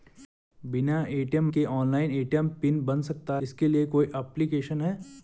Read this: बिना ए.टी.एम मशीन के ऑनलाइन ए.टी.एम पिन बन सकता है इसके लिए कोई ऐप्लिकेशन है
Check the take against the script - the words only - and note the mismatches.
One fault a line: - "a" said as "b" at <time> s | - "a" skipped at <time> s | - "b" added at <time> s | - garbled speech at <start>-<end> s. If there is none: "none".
- "मशीन" skipped at 1.5 s
- "है" skipped at 3.4 s